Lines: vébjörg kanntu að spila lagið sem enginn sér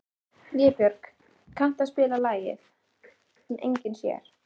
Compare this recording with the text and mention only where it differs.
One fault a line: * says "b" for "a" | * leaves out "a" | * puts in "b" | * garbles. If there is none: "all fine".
all fine